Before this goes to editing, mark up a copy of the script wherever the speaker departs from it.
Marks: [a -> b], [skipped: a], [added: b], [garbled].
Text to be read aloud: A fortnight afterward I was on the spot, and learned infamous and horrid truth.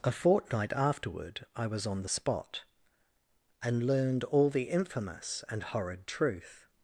A fortnight afterward I was on the spot, and learned [added: all the] infamous and horrid truth.